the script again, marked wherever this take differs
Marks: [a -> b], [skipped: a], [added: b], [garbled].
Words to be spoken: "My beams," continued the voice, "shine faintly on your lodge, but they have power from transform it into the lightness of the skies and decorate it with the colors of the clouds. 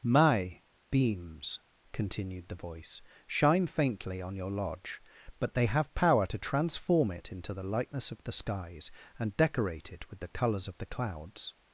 "My beams," continued the voice, "shine faintly on your lodge, but they have power [from -> to] transform it into the lightness of the skies and decorate it with the colors of the clouds.